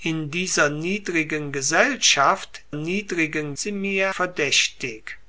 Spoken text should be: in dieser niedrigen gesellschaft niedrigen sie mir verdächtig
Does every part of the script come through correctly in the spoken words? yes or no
yes